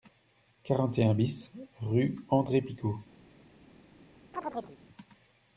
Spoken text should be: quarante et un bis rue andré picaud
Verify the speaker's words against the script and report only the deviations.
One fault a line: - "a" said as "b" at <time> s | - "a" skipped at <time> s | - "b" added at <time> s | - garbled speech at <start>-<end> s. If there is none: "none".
none